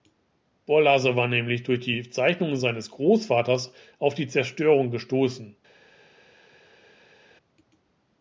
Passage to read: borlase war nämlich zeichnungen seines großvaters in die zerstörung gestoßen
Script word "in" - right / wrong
wrong